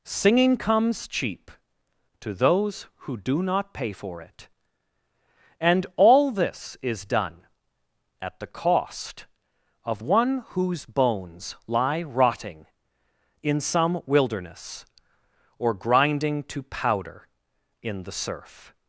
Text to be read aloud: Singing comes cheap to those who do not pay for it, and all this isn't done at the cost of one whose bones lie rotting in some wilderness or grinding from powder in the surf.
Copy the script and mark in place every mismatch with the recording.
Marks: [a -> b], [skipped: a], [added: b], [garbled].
Singing comes cheap to those who do not pay for it, and all this [isn't -> is] done at the cost of one whose bones lie rotting in some wilderness or grinding [from -> to] powder in the surf.